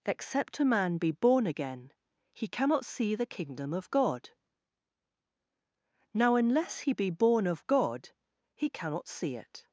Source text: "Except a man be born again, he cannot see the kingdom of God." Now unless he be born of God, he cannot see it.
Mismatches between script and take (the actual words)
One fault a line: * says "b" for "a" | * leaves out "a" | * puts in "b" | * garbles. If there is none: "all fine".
all fine